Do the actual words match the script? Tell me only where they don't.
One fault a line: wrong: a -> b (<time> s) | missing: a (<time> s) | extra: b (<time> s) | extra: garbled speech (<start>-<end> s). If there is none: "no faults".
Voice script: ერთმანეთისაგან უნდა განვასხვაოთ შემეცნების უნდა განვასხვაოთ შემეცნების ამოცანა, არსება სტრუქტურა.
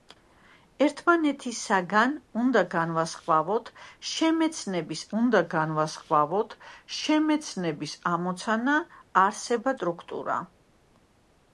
no faults